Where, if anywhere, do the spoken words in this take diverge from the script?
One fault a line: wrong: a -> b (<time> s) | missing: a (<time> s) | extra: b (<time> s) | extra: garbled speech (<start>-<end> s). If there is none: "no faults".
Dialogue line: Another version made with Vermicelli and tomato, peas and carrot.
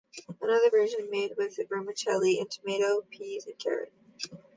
no faults